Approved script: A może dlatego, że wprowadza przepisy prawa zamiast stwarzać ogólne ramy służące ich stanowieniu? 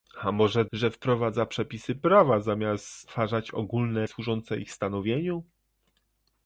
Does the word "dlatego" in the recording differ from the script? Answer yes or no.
yes